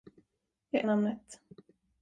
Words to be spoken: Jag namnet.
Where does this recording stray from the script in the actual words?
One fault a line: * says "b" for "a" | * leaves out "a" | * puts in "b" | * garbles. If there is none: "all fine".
all fine